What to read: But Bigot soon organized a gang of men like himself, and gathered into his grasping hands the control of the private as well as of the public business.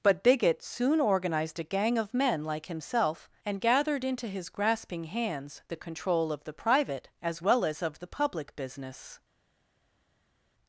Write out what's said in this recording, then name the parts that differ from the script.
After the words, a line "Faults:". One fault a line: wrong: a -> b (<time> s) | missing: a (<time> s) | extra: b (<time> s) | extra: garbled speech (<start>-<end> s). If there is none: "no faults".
But Bigot soon organized a gang of men like himself, and gathered into his grasping hands the control of the private as well as of the public business.
Faults:
no faults